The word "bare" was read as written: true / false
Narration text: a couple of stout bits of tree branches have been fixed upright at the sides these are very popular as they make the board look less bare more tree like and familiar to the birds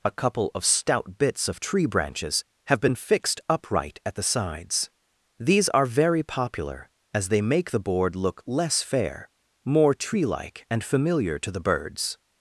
false